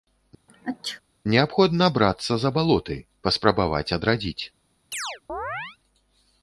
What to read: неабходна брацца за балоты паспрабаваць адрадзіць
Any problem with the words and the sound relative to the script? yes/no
yes